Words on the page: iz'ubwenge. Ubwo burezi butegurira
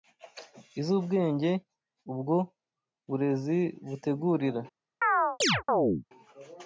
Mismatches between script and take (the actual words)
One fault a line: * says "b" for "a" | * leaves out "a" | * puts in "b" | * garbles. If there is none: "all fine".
all fine